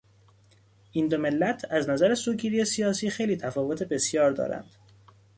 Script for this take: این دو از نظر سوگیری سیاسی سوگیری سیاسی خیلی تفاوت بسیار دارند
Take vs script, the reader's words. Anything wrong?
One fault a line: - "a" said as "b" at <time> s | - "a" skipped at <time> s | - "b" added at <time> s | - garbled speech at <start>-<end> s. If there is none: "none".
- "ملت" added at 1.2 s
- "سوگیری سیاسی" skipped at 3.1 s